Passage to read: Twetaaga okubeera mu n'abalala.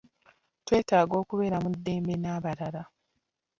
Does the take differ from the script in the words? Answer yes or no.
yes